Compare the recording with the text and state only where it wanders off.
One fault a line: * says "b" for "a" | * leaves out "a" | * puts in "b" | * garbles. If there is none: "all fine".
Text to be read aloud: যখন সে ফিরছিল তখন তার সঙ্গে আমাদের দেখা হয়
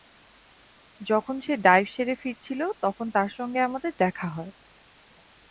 * puts in "ডাইভ সেরে"